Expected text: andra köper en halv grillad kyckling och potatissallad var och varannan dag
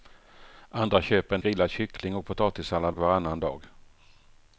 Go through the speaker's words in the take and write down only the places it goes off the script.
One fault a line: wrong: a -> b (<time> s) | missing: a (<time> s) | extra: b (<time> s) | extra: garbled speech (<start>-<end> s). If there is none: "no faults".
missing: halv (1.4 s)
missing: var (3.0 s)